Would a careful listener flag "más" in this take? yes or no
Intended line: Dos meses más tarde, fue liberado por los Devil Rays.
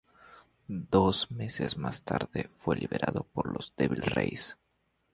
no